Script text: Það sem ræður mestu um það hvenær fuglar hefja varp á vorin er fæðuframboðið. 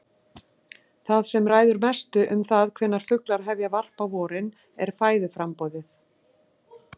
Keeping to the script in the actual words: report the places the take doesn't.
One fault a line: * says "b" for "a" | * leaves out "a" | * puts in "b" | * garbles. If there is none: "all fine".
all fine